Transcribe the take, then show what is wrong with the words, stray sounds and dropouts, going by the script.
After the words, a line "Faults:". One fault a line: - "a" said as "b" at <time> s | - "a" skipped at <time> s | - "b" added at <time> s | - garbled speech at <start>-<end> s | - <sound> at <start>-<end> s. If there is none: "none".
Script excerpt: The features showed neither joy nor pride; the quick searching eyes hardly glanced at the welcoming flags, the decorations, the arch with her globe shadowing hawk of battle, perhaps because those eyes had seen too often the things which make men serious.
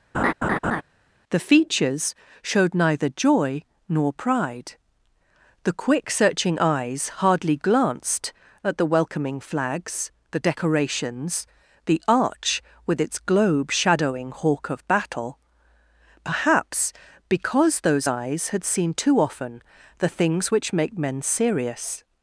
The features showed neither joy nor pride; the quick searching eyes hardly glanced at the welcoming flags, the decorations, the arch with its globe shadowing hawk of battle, perhaps because those eyes had seen too often the things which make men serious.
Faults:
- laugh at 0.1-0.8 s
- "her" said as "its" at 13.0 s